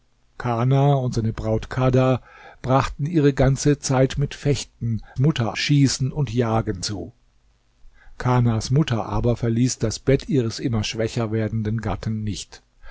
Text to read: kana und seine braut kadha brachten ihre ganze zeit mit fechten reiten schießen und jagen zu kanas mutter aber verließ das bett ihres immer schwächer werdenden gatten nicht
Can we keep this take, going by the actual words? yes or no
no